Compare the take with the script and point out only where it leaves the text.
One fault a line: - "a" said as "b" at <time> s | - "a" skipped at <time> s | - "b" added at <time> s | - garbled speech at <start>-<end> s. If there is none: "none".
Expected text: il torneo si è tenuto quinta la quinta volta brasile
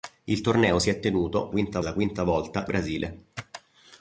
none